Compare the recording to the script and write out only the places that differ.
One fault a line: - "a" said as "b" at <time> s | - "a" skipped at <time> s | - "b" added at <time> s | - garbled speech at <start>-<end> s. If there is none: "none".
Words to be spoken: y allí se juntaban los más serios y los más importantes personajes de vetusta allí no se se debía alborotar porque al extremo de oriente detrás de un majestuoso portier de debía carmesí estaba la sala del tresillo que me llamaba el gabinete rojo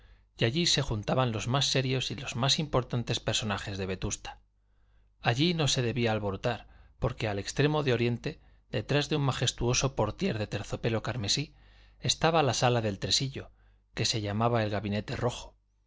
- "se" skipped at 5.8 s
- "debía" said as "terciopelo" at 10.5 s
- "me" said as "se" at 14.1 s